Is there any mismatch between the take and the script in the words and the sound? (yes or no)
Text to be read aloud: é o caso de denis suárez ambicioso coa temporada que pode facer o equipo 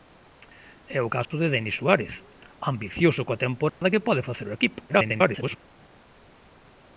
yes